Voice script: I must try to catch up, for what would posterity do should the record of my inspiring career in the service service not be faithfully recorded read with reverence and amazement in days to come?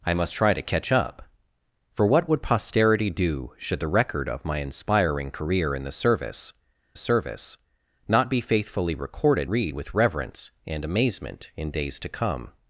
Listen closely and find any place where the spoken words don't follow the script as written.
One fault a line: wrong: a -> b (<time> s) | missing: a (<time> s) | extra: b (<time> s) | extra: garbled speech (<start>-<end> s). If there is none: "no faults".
no faults